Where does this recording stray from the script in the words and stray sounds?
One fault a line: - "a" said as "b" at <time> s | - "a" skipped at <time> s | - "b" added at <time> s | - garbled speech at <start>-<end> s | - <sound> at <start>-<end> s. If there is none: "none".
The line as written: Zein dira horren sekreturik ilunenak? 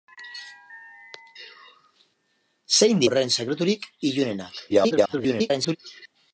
- "dira" skipped at 3.0 s
- garbled speech at 4.7-5.8 s